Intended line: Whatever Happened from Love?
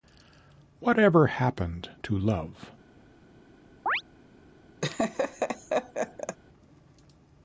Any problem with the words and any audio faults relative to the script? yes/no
yes